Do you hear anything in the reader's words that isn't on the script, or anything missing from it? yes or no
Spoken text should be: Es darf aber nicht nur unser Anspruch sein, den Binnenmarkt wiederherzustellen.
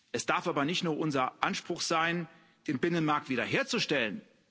no